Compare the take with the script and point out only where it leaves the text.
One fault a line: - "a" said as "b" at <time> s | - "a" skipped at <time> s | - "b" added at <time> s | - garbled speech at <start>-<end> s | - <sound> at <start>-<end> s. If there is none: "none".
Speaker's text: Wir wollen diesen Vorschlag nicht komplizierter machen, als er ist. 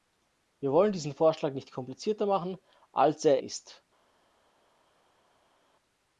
none